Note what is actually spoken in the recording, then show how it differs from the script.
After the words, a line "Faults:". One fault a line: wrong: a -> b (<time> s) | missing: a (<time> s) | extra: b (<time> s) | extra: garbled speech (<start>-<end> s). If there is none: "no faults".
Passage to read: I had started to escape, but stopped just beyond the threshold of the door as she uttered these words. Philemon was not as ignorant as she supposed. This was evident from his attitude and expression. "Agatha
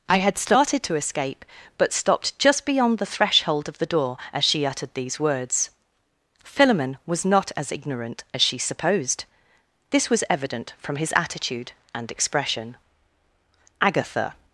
I had started to escape, but stopped just beyond the threshold of the door as she uttered these words. Philemon was not as ignorant as she supposed. This was evident from his attitude and expression. "Agatha
Faults:
no faults